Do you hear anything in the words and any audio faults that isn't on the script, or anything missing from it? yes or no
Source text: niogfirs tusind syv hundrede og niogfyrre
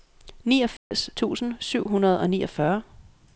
yes